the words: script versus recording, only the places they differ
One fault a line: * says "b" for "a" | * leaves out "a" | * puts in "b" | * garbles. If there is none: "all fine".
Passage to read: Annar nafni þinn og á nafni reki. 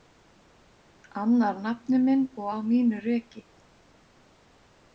* says "minn" for "þinn"
* says "mínu" for "nafni"